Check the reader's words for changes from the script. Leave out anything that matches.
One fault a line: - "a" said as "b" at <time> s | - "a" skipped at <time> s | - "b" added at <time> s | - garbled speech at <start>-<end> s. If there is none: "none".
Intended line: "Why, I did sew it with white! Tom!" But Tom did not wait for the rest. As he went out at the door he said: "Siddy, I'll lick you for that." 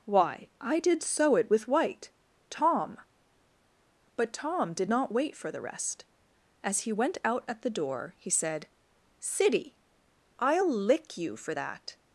none